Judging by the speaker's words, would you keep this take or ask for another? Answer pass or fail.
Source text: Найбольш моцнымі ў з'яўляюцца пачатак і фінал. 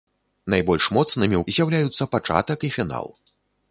pass